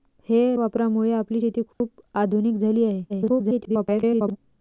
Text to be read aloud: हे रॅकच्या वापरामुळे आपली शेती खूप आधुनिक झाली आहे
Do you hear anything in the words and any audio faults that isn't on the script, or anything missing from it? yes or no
yes